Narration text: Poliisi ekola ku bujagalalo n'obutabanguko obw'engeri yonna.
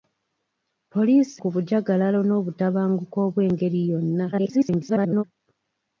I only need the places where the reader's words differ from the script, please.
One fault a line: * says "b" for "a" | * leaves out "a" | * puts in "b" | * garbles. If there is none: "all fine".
* leaves out "ekola"
* garbles